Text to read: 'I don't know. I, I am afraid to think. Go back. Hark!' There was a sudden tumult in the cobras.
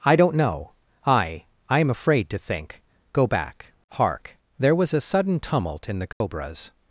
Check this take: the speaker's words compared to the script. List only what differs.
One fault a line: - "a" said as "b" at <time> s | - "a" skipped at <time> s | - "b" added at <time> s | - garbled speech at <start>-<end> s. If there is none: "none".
none